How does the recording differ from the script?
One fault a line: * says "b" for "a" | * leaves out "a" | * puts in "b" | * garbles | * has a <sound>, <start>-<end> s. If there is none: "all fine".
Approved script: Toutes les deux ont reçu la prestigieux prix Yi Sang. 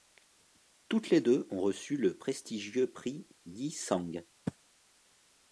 * says "le" for "la"